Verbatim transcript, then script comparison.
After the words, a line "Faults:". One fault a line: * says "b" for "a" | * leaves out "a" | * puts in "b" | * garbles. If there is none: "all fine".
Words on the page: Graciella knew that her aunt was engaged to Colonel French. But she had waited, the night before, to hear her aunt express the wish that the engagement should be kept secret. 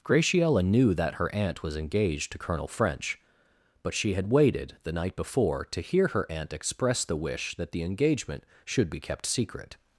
Graciella knew that her aunt was engaged to Colonel French. But she had waited, the night before, to hear her aunt express the wish that the engagement should be kept secret.
Faults:
all fine